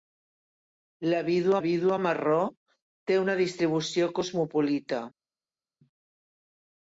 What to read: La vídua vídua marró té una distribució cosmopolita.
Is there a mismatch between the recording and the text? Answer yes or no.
no